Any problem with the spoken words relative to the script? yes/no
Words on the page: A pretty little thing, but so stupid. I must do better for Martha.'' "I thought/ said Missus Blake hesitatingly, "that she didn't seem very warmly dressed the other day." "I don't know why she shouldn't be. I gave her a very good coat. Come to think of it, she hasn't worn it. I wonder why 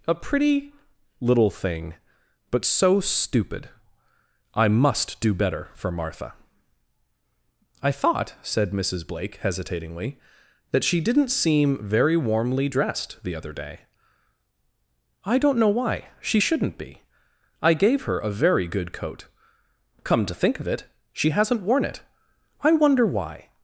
no